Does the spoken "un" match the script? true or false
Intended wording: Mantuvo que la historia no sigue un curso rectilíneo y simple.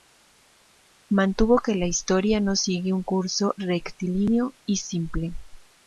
true